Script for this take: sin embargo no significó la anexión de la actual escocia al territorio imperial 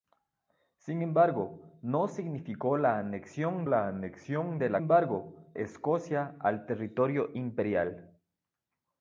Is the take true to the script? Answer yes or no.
no